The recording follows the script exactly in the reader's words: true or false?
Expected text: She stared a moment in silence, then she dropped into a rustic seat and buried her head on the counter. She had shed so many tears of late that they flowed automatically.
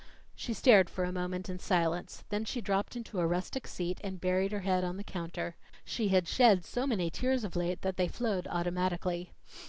false